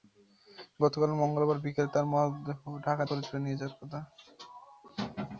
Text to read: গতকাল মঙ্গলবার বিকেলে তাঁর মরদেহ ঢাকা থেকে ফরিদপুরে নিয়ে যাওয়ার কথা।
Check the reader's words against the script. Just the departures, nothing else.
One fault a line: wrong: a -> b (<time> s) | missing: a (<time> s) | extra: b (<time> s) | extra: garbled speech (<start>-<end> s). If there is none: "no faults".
missing: থেকে (3.0 s)